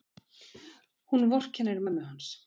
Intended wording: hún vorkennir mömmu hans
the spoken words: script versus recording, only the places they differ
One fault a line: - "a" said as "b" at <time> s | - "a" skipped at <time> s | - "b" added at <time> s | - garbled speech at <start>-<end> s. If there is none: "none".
none